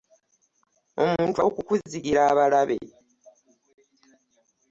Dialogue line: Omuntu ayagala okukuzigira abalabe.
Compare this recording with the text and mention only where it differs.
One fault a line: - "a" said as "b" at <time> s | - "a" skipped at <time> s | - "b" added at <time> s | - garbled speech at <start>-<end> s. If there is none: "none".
- "ayagala" skipped at 1.4 s